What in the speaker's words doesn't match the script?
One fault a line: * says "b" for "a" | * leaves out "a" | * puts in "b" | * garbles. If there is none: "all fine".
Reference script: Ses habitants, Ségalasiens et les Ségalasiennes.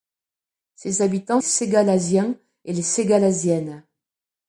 all fine